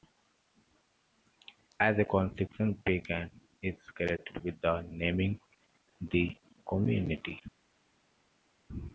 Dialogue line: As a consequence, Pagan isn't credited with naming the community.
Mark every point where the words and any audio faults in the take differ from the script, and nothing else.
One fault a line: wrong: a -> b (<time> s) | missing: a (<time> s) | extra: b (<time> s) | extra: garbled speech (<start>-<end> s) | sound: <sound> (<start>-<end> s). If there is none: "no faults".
wrong: isn't -> is (3.6 s)